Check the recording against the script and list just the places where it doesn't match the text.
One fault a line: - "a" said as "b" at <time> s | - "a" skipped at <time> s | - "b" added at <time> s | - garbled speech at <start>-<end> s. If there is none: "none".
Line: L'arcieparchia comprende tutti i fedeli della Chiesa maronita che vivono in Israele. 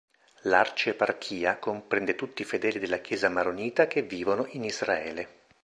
none